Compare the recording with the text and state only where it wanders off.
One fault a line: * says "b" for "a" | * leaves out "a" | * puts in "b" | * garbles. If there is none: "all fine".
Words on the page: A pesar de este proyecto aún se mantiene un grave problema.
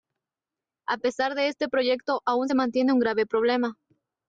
all fine